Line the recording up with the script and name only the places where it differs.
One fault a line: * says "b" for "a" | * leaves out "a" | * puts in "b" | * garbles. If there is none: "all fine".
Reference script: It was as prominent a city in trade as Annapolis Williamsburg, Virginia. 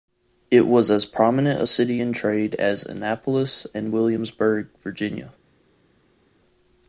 * puts in "and"